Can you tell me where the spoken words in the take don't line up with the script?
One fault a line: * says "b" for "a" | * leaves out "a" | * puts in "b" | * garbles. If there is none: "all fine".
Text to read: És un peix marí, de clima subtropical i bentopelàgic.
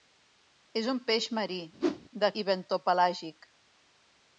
* leaves out "clima subtropical"